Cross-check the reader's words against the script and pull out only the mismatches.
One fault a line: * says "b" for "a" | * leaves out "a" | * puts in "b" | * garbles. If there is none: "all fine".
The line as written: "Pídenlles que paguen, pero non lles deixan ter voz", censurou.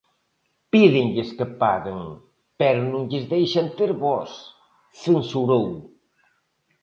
all fine